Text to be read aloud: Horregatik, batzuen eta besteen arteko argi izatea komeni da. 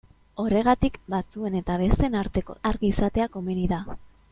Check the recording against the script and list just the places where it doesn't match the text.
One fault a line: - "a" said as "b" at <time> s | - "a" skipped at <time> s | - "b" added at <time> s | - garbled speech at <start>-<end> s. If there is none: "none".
none